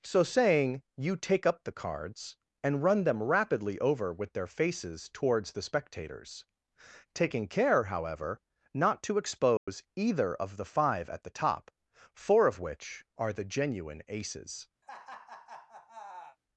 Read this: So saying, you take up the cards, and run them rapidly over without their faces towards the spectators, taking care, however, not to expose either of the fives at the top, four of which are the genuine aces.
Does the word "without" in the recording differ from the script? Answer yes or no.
yes